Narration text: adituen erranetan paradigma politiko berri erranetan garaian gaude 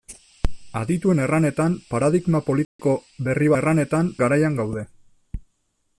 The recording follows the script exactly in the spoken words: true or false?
true